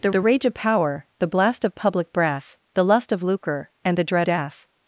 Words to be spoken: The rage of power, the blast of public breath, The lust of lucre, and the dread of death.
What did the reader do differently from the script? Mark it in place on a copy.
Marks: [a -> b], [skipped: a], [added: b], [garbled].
The [added: the] rage of power, the blast of public breath, The lust of lucre, and the dread [skipped: of] death.